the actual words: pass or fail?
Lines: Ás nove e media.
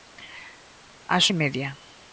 fail